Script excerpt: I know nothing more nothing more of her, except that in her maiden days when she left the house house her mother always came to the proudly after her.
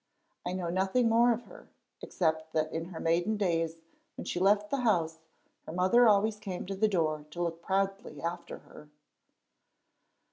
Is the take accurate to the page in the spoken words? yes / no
no